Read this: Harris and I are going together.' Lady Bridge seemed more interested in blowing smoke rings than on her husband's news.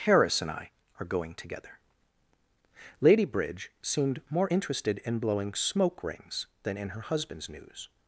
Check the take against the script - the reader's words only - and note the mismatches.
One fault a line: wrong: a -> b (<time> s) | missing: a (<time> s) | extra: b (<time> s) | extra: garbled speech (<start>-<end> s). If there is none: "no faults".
wrong: on -> in (6.8 s)